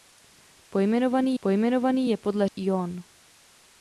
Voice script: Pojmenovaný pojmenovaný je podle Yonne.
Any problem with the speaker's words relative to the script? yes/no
no